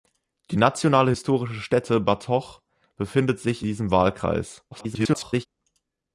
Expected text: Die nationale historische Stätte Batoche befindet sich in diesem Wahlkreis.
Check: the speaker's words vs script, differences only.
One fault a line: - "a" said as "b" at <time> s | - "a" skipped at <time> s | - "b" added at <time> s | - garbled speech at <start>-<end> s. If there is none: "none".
- "in" skipped at 3.6 s
- garbled speech at 4.7-5.5 s